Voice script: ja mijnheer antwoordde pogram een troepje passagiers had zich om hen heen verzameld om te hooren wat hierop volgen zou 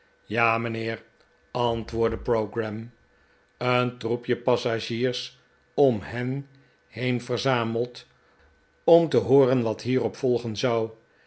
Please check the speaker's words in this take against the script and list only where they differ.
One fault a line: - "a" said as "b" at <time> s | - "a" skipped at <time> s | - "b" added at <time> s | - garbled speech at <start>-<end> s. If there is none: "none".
- "had zich" skipped at 5.4 s